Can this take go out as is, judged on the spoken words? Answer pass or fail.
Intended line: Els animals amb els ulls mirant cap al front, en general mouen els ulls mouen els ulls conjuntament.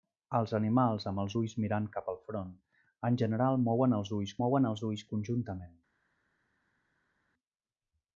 pass